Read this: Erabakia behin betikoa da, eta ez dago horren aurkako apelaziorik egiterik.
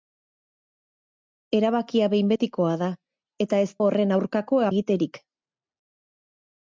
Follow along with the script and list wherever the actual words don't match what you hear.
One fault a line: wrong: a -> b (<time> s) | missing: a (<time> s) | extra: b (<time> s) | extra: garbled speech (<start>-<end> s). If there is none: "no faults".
missing: dago (3.7 s)
missing: apelaziorik (4.6 s)